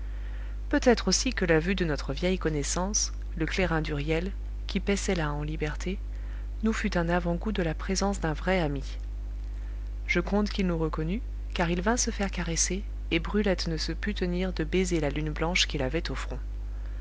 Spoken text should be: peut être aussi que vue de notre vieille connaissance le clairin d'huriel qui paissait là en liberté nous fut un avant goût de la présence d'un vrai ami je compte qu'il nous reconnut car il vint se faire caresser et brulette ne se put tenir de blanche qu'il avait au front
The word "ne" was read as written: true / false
true